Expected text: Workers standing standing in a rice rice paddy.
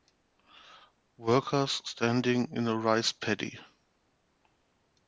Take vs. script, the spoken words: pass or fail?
fail